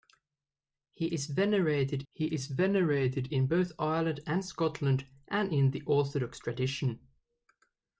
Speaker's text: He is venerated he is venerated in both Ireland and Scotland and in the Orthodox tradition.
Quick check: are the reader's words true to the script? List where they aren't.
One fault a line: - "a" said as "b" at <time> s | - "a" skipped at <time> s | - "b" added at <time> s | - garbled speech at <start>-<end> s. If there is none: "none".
none